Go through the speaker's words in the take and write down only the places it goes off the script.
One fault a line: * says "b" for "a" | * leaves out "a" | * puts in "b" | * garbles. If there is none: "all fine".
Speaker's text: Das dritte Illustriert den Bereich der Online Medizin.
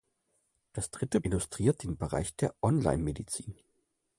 all fine